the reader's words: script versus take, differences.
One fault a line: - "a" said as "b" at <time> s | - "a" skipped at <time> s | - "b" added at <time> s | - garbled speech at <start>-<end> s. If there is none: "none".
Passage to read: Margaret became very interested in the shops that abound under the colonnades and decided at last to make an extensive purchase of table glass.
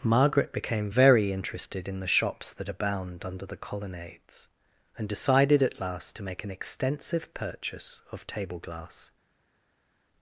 none